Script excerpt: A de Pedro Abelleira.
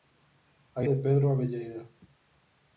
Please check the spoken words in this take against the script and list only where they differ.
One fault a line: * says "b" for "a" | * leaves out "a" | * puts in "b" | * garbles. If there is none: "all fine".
all fine